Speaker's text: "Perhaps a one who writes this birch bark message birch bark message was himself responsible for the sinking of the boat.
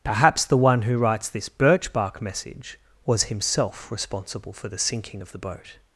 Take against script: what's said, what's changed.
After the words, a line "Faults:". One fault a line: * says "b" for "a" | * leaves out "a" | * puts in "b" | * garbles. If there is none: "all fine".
"Perhaps the one who writes this birch bark message was himself responsible for the sinking of the boat.
Faults:
* says "the" for "a"
* leaves out "birch bark message"